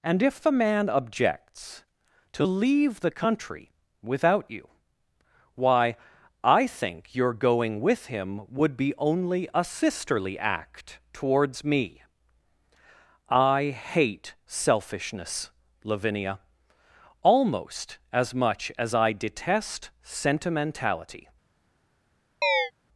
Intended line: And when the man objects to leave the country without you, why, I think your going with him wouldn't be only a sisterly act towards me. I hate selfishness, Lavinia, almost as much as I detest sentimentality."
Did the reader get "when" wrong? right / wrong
wrong